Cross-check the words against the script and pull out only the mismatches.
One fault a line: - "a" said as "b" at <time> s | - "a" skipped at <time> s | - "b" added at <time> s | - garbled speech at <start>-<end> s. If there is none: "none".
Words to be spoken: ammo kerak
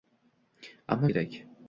none